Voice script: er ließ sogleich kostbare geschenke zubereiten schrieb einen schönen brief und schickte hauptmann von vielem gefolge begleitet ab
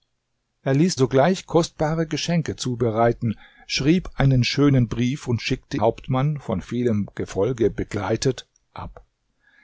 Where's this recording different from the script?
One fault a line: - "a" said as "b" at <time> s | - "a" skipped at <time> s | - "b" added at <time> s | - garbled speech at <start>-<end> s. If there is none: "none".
none